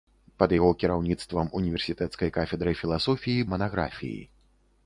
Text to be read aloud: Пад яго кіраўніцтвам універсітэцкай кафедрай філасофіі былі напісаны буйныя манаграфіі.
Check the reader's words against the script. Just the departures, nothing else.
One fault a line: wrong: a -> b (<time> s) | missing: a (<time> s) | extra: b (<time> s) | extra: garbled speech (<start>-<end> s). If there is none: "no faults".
missing: былі напісаны буйныя (3.5 s)